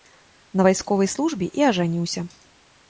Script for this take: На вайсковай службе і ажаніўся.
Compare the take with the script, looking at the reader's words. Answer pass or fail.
pass